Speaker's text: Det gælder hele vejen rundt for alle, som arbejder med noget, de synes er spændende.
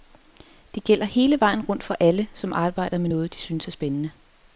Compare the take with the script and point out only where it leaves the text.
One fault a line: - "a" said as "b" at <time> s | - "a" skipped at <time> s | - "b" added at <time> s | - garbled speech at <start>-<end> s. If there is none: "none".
none